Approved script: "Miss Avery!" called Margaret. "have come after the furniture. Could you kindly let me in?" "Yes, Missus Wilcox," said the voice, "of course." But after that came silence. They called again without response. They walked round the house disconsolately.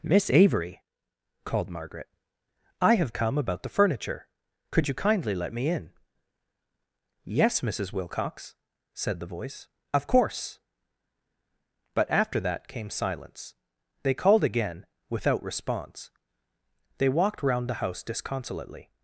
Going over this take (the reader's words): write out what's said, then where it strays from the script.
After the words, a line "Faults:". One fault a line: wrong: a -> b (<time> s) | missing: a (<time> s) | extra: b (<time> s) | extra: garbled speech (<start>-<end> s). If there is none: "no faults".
"Miss Avery!" called Margaret. "I have come about the furniture. Could you kindly let me in?" "Yes, Missus Wilcox," said the voice, "of course." But after that came silence. They called again without response. They walked round the house disconsolately.
Faults:
extra: I (2.8 s)
wrong: after -> about (3.4 s)